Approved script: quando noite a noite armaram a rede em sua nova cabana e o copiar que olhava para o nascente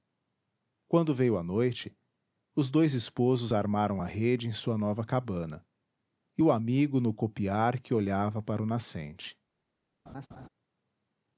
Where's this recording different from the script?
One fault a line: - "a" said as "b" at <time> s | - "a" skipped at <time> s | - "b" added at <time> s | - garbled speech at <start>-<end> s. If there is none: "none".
- "noite" said as "veio" at 1.1 s
- "os dois esposos" added at 2.5 s
- "amigo no" added at 6.5 s